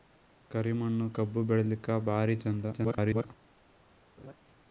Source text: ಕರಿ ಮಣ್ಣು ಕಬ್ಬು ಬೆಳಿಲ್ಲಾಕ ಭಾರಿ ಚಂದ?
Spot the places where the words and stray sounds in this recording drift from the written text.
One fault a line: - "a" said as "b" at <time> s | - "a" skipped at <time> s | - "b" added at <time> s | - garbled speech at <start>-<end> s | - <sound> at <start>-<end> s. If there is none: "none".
- garbled speech at 2.7-3.3 s
- laugh at 4.2-4.4 s